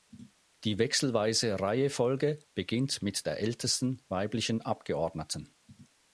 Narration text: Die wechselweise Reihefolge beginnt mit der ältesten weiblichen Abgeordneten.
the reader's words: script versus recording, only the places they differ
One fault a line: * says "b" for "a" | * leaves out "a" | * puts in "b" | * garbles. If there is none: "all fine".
all fine